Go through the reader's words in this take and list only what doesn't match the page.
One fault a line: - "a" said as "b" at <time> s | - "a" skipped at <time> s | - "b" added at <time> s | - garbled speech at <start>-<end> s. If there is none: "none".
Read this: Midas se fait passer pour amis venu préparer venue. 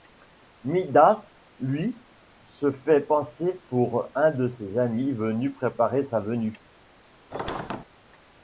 - "lui" added at 1.6 s
- "un de ses" added at 4.2 s
- "sa" added at 6.0 s